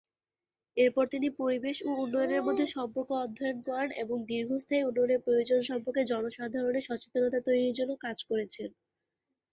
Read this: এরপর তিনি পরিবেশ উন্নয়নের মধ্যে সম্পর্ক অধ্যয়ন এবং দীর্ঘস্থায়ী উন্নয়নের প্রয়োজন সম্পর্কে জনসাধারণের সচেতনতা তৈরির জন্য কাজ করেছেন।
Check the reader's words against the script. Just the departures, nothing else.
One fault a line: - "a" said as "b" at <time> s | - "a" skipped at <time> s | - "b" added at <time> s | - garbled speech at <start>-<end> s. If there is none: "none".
- "ও" added at 1.8 s
- "করেন" added at 3.7 s